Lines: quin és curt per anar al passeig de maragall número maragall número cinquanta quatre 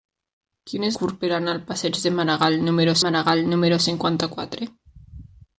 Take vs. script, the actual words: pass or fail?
pass